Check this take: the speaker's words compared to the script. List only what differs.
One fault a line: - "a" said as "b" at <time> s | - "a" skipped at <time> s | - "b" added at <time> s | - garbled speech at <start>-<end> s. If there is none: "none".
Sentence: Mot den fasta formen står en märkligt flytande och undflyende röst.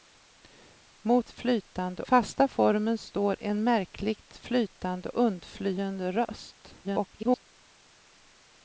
- "den" said as "flytande" at 1.3 s
- "och" skipped at 5.1 s
- garbled speech at 6.8-7.4 s